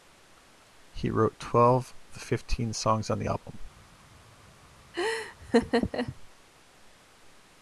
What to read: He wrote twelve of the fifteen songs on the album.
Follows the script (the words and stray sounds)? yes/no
no